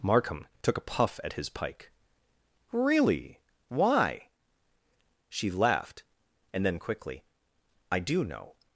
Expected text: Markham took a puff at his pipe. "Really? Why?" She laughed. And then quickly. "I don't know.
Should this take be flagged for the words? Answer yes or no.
yes